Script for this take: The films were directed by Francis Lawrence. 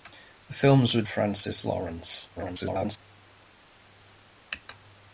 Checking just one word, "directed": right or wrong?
wrong